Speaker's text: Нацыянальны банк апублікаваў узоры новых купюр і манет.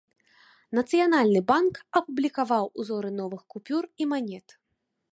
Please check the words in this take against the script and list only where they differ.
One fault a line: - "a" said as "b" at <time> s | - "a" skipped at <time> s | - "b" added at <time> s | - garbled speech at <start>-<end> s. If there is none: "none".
none